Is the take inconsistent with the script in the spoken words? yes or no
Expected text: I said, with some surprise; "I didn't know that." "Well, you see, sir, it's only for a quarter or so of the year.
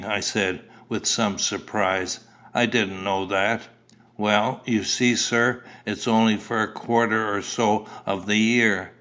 no